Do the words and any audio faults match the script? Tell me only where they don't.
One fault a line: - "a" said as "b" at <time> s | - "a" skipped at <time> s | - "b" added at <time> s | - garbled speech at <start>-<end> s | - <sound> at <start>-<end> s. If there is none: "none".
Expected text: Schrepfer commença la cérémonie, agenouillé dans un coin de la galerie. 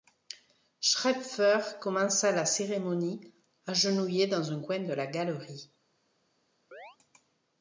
- chirp at 6.7-7.0 s